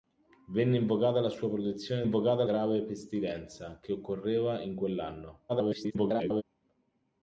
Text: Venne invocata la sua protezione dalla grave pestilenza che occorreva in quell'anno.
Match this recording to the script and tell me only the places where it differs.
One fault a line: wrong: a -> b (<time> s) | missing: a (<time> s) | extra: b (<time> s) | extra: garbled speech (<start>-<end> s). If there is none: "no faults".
wrong: dalla -> invocata (2.0 s)
extra: garbled speech (5.5-6.4 s)